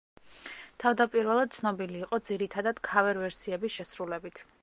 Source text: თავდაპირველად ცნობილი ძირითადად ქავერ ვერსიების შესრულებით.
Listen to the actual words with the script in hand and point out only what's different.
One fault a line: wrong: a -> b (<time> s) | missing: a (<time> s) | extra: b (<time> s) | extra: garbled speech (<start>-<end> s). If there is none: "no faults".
extra: იყო (2.0 s)